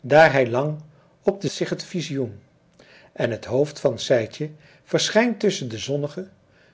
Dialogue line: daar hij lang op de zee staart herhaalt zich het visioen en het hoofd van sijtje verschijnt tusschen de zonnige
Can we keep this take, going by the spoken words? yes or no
no